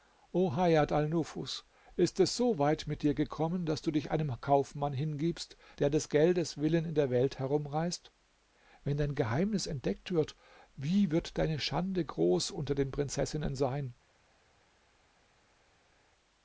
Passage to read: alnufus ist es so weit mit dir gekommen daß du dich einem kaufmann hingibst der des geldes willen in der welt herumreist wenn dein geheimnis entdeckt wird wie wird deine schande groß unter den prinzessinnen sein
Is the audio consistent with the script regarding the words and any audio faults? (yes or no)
yes